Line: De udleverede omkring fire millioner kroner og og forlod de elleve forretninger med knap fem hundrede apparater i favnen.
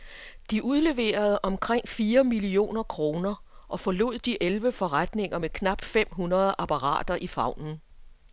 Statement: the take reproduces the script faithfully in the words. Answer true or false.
false